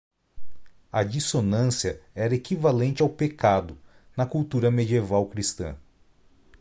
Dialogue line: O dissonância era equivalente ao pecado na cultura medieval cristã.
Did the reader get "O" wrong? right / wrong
wrong